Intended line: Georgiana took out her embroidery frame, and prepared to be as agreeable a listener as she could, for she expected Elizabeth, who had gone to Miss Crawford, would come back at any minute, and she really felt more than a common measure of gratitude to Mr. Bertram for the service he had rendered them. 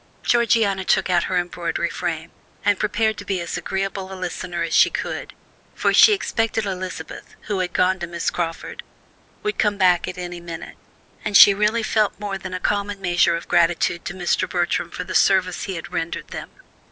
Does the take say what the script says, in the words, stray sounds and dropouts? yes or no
yes